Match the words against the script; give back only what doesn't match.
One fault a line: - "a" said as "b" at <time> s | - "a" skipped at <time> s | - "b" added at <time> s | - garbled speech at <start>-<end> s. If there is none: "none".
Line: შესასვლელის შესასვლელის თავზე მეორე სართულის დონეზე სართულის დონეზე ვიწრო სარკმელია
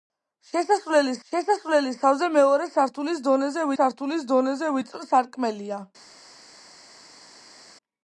none